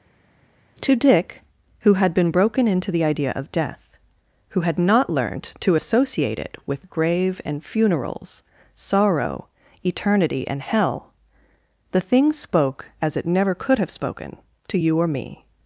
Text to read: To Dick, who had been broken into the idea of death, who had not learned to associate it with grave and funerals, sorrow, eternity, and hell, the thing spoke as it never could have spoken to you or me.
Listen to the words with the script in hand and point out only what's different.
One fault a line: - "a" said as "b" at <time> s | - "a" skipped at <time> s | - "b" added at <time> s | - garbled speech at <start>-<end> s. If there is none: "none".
none